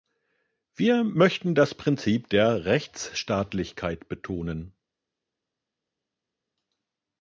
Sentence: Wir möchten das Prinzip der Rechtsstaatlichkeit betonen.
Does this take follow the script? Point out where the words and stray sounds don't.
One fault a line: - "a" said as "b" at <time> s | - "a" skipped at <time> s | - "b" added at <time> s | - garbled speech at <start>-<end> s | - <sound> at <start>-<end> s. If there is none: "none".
none